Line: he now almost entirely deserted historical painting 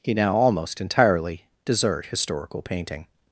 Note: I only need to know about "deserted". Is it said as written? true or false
false